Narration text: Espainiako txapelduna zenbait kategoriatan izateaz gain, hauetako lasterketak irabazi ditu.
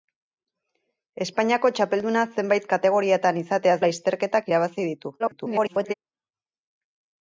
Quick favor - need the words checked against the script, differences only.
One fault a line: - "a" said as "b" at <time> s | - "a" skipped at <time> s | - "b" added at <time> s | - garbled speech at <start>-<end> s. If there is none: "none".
- "gain hauetako" skipped at 3.8 s
- garbled speech at 5.2-5.9 s